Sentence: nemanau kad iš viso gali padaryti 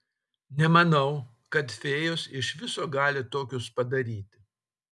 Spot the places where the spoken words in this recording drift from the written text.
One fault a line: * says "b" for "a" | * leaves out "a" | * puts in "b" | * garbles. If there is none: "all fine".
* puts in "fėjos"
* puts in "tokius"